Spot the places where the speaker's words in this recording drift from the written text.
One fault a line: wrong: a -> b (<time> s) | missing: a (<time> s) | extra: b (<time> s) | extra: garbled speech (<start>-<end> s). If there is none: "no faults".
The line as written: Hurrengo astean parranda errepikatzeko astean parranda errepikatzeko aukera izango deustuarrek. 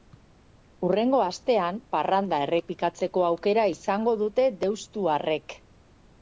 missing: astean parranda errepikatzeko (3.3 s)
extra: dute (4.2 s)